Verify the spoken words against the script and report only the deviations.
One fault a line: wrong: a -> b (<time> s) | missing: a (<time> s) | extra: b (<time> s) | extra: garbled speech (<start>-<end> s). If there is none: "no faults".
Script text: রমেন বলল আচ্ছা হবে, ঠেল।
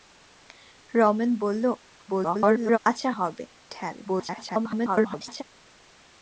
extra: garbled speech (2.1-2.8 s)
extra: garbled speech (4.0-5.4 s)